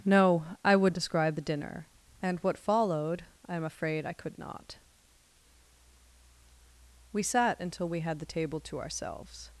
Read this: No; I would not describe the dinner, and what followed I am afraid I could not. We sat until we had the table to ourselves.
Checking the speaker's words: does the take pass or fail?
fail